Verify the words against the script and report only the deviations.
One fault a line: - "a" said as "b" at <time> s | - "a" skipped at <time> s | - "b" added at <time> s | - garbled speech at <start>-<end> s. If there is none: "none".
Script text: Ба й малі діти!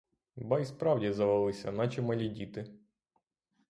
- "справді завелися наче" added at 0.7 s